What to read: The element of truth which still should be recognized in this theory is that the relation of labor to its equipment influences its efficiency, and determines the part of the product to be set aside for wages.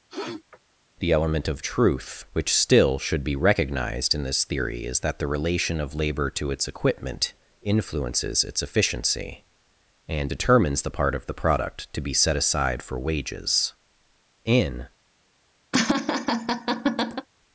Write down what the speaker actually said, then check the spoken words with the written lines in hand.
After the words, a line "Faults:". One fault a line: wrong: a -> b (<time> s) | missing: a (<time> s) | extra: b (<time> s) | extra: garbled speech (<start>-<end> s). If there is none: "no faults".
The element of truth which still should be recognized in this theory is that the relation of labor to its equipment influences its efficiency, and determines the part of the product to be set aside for wages. In
Faults:
extra: In (14.4 s)